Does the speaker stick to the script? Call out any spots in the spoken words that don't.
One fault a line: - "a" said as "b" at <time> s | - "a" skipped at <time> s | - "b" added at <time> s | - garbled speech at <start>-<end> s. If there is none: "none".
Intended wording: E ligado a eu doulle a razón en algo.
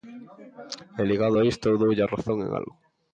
- "isto" added at 1.5 s